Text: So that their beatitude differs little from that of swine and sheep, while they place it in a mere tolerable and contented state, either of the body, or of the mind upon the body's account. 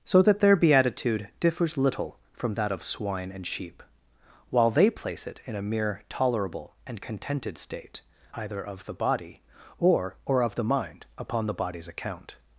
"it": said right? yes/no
yes